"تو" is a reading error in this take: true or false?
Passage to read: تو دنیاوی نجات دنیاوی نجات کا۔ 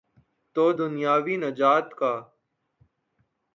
false